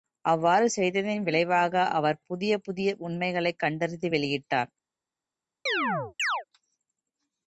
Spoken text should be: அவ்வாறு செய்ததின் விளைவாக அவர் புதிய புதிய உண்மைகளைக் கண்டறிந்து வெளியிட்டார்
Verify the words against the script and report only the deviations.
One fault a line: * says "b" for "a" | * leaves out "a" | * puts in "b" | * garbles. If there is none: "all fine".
all fine